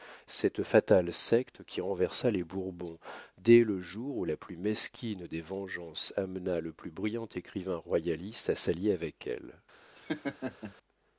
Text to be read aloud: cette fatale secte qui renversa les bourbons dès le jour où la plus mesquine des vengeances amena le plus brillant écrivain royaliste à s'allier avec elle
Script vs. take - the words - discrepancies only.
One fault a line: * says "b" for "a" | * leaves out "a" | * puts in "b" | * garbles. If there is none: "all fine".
all fine